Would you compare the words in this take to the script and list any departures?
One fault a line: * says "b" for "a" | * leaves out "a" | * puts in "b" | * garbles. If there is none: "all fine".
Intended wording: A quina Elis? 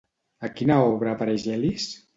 * puts in "obra apareix"